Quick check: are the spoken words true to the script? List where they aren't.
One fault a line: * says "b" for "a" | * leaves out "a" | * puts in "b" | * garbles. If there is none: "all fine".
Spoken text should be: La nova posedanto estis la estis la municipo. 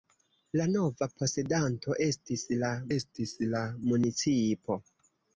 all fine